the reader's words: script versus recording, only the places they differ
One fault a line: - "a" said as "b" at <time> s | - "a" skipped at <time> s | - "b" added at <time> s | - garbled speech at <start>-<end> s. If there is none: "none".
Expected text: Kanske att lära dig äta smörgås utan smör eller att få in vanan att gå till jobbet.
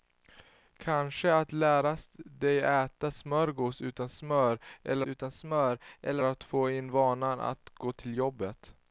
- "utan smör eller" added at 5.0 s